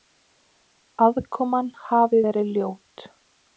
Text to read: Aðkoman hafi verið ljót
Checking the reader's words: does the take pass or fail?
pass